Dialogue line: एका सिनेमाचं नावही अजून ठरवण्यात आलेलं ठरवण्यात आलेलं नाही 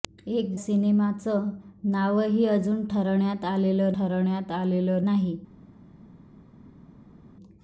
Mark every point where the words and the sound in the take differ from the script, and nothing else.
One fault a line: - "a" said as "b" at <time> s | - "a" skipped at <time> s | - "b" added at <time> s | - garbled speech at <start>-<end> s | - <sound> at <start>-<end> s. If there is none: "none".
none